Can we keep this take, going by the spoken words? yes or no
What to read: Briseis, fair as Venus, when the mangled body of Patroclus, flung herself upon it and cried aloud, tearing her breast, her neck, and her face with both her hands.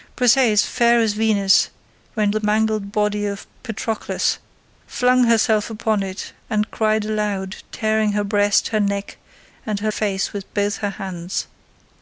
yes